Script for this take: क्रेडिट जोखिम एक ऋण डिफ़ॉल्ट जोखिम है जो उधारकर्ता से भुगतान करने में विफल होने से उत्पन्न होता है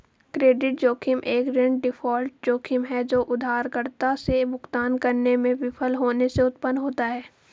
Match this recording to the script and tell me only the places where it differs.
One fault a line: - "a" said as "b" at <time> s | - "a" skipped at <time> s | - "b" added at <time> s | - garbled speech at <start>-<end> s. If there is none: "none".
none